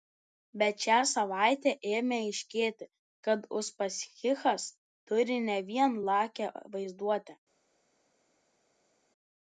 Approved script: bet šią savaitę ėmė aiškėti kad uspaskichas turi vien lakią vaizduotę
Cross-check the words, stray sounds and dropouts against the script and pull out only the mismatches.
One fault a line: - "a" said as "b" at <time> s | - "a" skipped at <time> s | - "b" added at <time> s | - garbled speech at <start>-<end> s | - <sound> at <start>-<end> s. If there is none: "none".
- "ne" added at 5.5 s